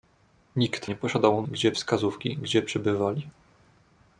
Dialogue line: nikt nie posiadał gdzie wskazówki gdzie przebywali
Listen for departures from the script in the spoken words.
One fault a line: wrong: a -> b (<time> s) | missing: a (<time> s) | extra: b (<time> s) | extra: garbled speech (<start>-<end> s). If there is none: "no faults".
no faults